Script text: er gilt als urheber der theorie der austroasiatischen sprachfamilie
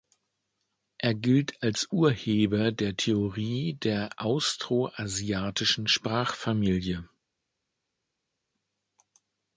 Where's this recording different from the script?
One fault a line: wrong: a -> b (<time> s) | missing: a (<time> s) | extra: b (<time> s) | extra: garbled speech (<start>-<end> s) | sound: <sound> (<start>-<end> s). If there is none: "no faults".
no faults